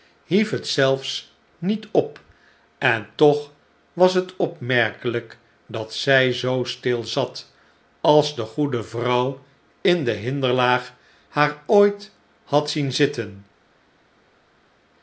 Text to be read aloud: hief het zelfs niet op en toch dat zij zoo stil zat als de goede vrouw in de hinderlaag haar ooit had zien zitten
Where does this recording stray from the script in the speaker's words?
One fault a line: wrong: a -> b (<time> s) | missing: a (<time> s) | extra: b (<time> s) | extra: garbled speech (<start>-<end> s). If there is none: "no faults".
extra: was het opmerkelijk (3.9 s)